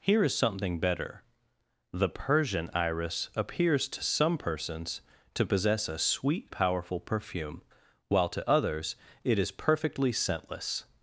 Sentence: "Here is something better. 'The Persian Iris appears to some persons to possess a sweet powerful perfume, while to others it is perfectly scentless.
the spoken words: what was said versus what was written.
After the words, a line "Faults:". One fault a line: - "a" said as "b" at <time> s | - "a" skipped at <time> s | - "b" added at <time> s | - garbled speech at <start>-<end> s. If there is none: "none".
"Here is something better. 'The Persian Iris appears to some persons to possess a sweet powerful perfume, while to others it is perfectly scentless.
Faults:
none